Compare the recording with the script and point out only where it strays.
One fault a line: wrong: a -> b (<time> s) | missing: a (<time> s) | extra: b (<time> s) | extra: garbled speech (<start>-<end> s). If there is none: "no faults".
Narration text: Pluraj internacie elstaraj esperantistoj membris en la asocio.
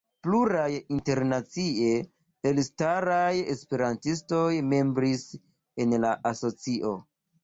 no faults